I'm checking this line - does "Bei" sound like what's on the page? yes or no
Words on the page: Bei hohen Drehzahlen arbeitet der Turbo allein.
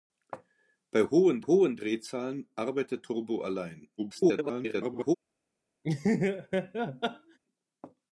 yes